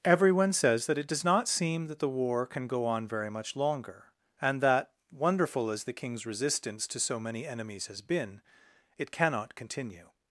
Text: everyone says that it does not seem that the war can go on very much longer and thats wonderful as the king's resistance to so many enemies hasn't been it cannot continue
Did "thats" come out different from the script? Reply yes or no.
yes